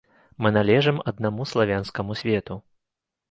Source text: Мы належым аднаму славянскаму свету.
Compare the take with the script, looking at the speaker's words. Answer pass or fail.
pass